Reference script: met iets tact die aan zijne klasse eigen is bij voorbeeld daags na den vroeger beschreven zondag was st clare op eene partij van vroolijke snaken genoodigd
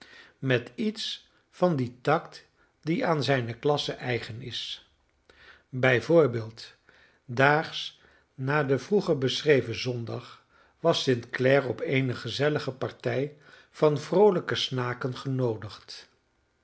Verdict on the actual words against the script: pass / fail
fail